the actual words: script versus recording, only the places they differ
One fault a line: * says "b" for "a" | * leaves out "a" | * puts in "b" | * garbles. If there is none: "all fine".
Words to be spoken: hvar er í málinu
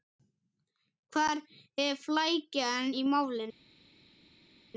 * puts in "flækjan"